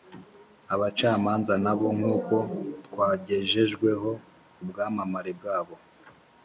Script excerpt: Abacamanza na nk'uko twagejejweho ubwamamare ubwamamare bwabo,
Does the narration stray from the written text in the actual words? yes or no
yes